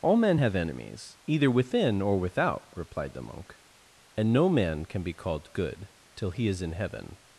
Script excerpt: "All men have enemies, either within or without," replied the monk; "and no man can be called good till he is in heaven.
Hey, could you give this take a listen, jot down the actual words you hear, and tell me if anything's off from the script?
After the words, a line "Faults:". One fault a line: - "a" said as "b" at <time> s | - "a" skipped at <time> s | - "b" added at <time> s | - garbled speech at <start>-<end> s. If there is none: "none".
"All men have enemies, either within or without," replied the monk; "and no man can be called good till he is in heaven.
Faults:
none